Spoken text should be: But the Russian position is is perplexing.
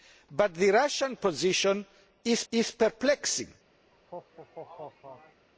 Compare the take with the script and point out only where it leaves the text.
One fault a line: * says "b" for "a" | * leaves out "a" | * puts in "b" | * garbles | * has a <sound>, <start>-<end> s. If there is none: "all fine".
* has a laugh, 3.9-5.5 s